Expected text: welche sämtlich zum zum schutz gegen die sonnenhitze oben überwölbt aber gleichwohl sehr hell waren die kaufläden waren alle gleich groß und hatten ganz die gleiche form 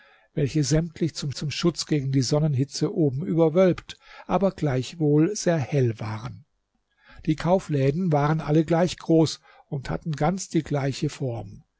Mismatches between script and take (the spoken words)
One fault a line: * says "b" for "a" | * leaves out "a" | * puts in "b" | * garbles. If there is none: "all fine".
all fine